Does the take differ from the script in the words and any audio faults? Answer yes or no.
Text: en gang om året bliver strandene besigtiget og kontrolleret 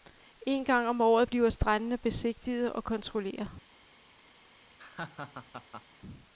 yes